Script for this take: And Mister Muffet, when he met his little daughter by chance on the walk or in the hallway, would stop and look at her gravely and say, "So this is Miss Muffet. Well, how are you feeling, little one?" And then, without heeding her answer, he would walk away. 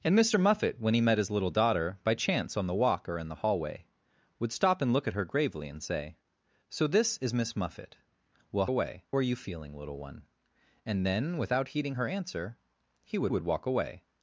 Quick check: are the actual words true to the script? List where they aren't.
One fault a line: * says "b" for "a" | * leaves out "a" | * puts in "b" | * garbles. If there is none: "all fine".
* says "away" for "how"
* puts in "would"